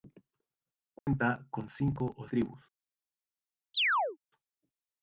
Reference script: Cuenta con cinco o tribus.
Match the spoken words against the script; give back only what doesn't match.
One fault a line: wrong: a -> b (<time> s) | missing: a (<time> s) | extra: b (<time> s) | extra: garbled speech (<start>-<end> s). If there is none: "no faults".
no faults